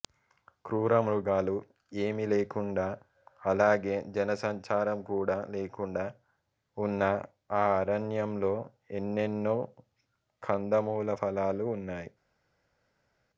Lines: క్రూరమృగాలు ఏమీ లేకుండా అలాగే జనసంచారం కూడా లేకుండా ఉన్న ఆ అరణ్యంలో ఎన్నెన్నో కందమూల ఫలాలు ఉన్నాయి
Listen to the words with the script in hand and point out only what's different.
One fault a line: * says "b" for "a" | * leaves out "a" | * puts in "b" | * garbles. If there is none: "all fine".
all fine